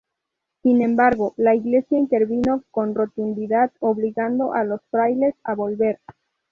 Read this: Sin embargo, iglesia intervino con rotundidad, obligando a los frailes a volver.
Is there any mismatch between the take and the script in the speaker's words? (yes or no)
yes